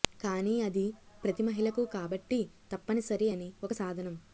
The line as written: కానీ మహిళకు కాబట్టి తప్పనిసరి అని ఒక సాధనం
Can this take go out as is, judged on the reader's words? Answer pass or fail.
fail